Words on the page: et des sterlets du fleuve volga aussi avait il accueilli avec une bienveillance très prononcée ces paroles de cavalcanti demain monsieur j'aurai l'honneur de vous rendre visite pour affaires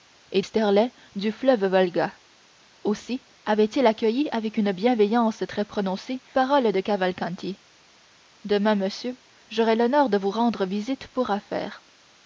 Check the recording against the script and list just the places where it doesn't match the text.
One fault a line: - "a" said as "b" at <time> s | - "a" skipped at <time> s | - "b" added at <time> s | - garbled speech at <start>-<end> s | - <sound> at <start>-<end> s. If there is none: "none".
- "des" skipped at 0.4 s
- "ces" skipped at 6.2 s